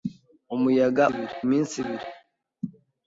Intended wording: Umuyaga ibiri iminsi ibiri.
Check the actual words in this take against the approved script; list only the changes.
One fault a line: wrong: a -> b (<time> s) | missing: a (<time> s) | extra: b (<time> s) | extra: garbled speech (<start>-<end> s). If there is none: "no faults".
no faults